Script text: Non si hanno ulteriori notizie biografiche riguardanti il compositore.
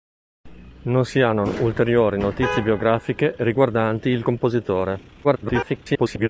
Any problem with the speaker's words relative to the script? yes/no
yes